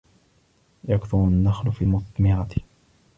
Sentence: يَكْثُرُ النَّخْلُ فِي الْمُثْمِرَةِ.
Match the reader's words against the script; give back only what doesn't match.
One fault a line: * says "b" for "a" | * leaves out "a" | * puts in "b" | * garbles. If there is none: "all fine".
all fine